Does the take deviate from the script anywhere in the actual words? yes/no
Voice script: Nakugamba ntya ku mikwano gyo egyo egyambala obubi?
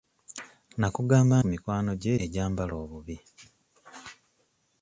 yes